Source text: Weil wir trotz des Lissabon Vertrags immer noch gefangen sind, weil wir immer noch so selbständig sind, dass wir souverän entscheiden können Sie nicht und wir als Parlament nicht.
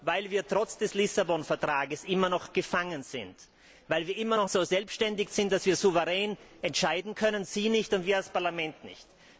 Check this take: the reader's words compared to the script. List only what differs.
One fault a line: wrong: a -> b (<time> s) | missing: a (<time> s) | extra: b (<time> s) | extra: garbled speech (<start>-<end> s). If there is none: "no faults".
no faults